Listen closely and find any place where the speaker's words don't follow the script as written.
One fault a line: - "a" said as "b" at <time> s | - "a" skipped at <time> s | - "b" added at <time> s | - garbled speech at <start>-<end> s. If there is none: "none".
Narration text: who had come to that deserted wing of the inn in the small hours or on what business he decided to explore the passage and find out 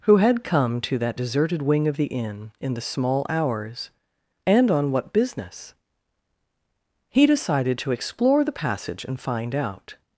- "or" said as "and" at 4.5 s